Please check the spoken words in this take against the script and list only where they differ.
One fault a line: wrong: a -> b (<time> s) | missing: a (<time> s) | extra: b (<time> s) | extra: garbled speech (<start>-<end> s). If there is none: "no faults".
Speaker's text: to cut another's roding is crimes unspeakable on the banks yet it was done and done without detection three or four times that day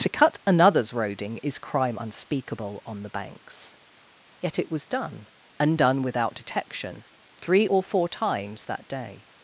wrong: crimes -> crime (1.6 s)